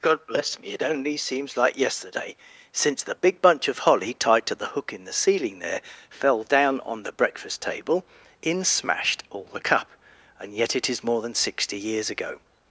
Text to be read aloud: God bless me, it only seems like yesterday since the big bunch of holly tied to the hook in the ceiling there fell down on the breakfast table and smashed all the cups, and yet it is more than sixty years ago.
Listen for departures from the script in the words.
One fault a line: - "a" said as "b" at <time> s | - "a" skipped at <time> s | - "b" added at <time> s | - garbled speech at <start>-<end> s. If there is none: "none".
- "and" said as "in" at 8.4 s
- "cups" said as "cup" at 9.6 s